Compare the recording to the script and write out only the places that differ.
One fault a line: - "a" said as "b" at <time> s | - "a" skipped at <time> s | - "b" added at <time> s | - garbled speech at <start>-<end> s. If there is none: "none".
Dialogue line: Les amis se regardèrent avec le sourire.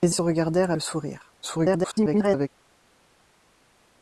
- "amis" skipped at 0.1 s
- "avec" skipped at 0.7 s
- garbled speech at 1.4-2.5 s